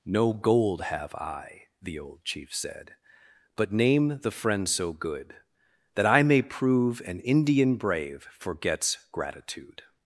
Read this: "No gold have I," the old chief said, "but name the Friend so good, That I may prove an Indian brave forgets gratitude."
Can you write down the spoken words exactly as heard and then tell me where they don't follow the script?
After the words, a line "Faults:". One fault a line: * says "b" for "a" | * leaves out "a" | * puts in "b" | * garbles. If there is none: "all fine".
"No gold have I," the old chief said, "but name the Friend so good, That I may prove an Indian brave forgets gratitude."
Faults:
all fine